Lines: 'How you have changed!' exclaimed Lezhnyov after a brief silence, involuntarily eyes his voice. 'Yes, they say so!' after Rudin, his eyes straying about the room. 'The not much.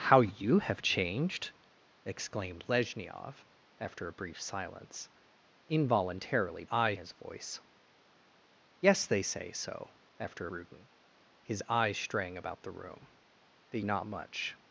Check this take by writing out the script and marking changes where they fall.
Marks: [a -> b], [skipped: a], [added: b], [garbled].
'How you have changed!' exclaimed Lezhnyov after a brief silence, involuntarily eyes his voice. 'Yes, they say so!' after Rudin, his eyes straying about the room. 'The not much.